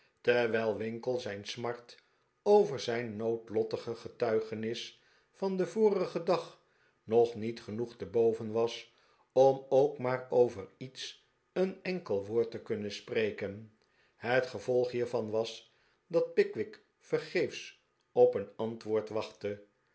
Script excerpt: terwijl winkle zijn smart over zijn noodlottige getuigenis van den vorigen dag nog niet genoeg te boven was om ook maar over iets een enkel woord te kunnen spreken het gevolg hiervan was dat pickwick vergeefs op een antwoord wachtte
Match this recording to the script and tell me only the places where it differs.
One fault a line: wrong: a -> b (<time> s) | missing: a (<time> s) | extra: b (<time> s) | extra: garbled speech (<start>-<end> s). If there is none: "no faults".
no faults